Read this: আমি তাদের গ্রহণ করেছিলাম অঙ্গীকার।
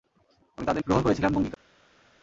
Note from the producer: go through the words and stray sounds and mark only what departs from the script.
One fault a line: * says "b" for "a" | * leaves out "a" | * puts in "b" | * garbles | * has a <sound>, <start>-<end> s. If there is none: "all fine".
all fine